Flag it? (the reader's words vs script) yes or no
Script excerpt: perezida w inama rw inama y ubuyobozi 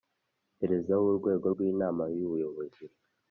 yes